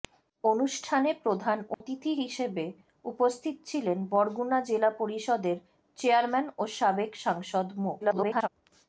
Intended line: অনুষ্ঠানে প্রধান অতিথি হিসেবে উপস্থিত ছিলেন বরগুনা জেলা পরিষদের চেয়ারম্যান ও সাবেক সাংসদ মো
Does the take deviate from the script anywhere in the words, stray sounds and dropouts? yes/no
yes